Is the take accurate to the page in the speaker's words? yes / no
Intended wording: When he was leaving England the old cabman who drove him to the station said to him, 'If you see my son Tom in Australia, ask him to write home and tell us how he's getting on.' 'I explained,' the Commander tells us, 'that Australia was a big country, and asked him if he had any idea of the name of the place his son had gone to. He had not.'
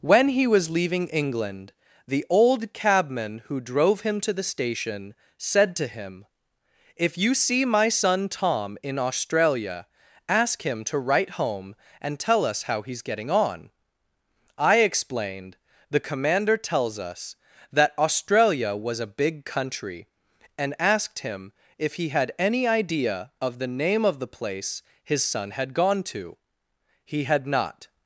yes